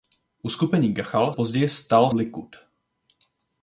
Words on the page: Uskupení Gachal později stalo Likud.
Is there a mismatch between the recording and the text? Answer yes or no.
no